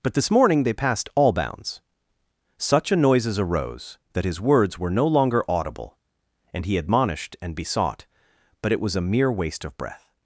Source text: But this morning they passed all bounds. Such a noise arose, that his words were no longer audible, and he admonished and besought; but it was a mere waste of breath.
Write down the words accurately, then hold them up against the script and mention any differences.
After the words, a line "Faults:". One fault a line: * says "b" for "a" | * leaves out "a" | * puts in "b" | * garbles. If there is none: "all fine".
But this morning they passed all bounds. Such a noises arose, that his words were no longer audible, and he admonished and besought; but it was a mere waste of breath.
Faults:
* says "noises" for "noise"